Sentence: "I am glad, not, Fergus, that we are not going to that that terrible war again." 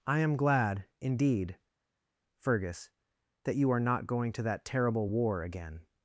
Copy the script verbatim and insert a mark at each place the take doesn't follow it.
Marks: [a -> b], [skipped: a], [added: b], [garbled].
"I am glad, [not, -> indeed] Fergus, that [we -> you] are not going to that [skipped: that] terrible war again."